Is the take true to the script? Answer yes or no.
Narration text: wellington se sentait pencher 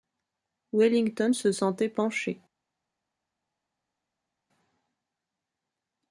yes